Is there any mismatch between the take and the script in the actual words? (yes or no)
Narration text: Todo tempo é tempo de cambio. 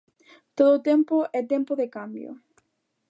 no